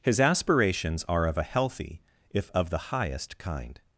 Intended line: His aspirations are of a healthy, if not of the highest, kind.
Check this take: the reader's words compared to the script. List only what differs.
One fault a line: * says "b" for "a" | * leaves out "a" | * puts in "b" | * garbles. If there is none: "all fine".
* leaves out "not"